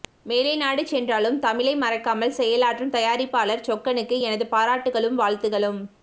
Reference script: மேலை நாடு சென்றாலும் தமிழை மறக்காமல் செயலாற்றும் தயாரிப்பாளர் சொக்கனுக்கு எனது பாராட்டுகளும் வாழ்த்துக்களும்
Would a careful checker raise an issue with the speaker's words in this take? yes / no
no